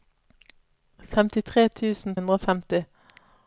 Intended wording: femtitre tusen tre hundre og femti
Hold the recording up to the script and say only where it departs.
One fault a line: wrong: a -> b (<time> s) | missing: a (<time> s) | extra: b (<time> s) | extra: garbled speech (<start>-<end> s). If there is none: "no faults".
missing: tre (2.2 s)